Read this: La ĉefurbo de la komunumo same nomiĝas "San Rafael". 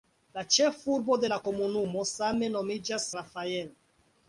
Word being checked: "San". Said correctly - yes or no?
no